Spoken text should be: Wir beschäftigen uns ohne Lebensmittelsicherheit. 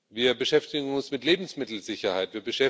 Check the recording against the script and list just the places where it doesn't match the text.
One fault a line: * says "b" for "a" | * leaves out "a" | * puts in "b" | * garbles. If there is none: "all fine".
* says "mit" for "ohne"